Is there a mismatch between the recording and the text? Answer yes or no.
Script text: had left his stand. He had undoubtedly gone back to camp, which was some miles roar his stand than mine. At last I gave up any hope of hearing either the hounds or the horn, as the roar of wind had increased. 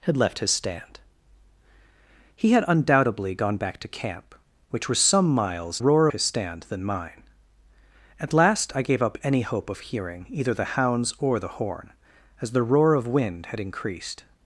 no